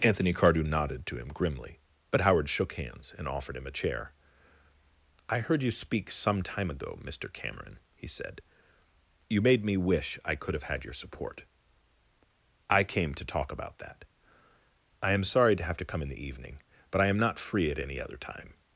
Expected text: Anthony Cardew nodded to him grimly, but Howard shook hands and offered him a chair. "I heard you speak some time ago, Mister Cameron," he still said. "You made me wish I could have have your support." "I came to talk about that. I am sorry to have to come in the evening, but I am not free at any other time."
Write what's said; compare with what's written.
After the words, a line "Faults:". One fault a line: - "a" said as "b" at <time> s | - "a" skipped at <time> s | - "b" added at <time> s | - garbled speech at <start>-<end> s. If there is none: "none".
Anthony Cardew nodded to him grimly, but Howard shook hands and offered him a chair. "I heard you speak some time ago, Mister Cameron," he said. "You made me wish I could have had your support." "I came to talk about that. I am sorry to have to come in the evening, but I am not free at any other time."
Faults:
- "still" skipped at 8.1 s
- "have" said as "had" at 10.7 s